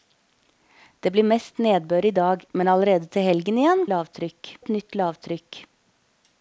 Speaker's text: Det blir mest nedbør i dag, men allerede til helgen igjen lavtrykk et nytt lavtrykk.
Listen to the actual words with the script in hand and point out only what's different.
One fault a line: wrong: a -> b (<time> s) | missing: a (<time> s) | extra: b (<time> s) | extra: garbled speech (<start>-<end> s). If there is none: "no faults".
no faults